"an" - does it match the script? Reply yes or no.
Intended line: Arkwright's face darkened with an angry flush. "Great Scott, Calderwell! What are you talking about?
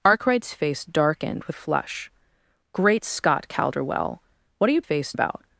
no